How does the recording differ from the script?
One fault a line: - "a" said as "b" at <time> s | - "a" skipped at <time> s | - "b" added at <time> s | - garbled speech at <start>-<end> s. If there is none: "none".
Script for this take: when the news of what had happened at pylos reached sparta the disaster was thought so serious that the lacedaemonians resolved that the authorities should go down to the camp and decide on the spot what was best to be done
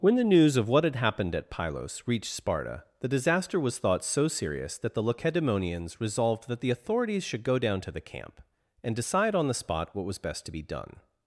none